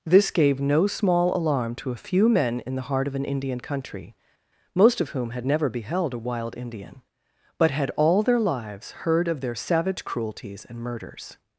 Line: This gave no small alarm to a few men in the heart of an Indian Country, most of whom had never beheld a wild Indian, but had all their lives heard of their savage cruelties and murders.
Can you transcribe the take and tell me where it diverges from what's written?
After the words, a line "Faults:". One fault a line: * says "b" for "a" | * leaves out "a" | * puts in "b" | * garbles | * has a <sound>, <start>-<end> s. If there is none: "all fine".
This gave no small alarm to a few men in the heart of an Indian Country, most of whom had never beheld a wild Indian, but had all their lives heard of their savage cruelties and murders.
Faults:
all fine